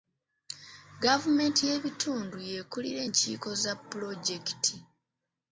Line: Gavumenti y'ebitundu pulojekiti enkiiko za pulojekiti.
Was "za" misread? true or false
false